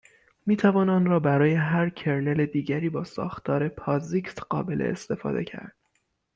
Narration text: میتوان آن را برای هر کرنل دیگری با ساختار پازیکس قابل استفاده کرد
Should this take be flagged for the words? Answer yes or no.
no